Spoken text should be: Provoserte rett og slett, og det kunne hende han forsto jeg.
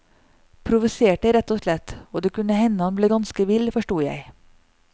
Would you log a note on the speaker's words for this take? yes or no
yes